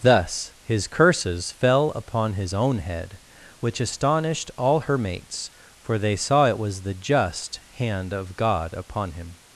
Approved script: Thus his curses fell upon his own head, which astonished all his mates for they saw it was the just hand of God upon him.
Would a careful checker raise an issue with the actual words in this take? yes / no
yes